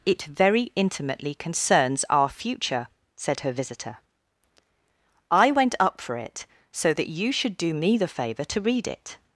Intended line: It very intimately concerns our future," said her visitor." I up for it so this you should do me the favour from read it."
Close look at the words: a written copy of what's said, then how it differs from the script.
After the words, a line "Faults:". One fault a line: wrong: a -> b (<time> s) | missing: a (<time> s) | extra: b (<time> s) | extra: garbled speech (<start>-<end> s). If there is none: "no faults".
It very intimately concerns our future," said her visitor." I went up for it so that you should do me the favour to read it."
Faults:
extra: went (5.5 s)
wrong: this -> that (6.9 s)
wrong: from -> to (8.4 s)